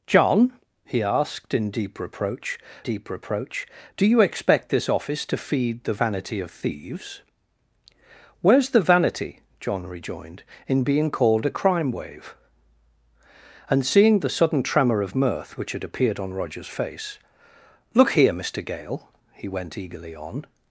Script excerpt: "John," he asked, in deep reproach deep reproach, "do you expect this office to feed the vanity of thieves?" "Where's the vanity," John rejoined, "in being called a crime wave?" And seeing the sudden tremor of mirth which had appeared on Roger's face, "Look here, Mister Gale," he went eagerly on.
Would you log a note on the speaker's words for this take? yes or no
no